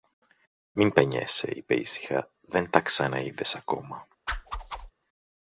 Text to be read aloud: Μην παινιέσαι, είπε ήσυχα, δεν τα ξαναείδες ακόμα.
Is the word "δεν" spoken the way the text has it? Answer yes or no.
yes